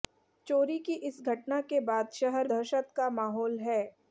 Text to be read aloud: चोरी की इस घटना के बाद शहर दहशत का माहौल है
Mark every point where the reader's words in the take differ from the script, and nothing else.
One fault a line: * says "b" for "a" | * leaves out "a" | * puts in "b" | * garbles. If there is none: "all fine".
all fine